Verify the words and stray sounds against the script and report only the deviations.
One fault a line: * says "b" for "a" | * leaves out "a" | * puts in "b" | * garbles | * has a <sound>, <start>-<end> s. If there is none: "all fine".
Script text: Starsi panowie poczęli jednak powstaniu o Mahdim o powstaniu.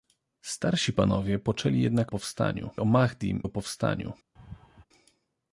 * has a laugh, 4.4-4.9 s